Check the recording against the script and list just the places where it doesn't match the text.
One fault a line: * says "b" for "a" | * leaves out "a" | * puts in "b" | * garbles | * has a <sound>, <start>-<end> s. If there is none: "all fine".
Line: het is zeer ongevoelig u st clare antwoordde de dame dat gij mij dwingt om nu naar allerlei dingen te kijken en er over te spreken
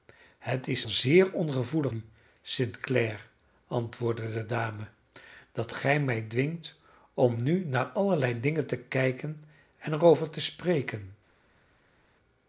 all fine